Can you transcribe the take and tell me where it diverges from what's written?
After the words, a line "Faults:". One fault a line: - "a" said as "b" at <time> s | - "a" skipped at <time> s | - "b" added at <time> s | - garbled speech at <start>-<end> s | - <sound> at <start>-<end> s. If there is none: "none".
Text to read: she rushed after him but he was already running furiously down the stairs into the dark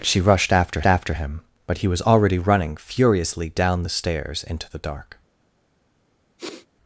she rushed after after him but he was already running furiously down the stairs into the dark
Faults:
- "after" added at 0.8 s
- sniff at 6.4-6.7 s